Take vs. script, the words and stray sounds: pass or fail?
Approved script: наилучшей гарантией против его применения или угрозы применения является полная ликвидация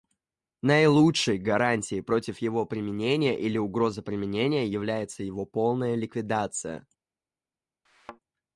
fail